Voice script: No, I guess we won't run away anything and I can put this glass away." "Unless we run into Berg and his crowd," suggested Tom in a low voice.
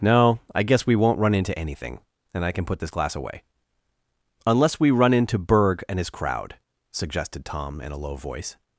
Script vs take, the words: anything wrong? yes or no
yes